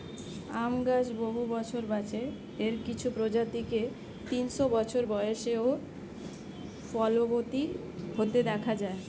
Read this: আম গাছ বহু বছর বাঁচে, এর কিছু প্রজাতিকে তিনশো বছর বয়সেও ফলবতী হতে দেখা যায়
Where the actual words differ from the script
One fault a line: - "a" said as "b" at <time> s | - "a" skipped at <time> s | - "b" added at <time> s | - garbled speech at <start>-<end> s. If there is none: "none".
none